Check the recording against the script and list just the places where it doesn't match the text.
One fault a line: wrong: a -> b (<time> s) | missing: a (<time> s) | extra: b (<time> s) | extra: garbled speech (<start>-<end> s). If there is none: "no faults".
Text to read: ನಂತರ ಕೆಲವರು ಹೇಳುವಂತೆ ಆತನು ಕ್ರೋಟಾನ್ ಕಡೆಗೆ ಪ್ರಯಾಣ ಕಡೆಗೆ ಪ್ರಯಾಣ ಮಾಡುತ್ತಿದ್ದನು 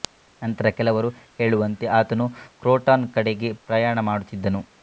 missing: ಕಡೆಗೆ ಪ್ರಯಾಣ (4.0 s)